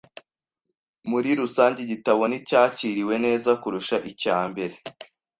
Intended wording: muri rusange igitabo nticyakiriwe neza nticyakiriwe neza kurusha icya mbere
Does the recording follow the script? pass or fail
fail